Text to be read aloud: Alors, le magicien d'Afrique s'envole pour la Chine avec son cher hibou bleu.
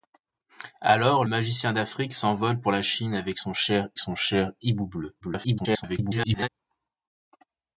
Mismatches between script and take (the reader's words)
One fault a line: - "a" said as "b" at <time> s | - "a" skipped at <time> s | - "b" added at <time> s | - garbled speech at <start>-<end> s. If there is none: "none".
- "le" skipped at 1.2 s
- "son cher" added at 4.0 s
- garbled speech at 5.2-6.5 s